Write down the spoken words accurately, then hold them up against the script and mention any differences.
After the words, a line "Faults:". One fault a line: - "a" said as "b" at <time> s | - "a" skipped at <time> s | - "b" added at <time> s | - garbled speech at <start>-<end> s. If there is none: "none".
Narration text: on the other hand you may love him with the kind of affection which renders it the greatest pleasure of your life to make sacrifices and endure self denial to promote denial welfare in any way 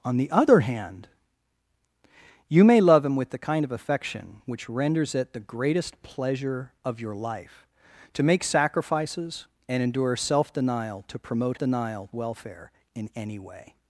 on the other hand you may love him with the kind of affection which renders it the greatest pleasure of your life to make sacrifices and endure self denial to promote denial welfare in any way
Faults:
none